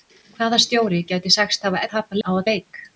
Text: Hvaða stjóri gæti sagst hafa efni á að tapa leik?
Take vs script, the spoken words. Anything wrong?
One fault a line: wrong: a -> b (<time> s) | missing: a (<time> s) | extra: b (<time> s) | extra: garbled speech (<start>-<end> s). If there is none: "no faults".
wrong: efni -> tapa (1.9 s)
missing: tapa (2.5 s)